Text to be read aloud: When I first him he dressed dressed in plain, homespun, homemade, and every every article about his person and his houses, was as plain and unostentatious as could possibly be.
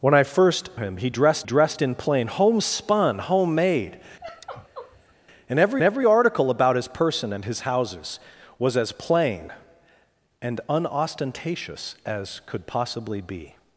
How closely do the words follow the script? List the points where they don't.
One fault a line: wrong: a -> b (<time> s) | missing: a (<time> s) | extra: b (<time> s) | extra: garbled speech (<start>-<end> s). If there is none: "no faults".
no faults